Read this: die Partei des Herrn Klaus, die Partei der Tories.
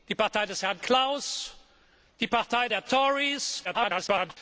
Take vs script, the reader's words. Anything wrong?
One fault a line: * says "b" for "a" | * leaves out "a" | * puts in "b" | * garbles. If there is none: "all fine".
* garbles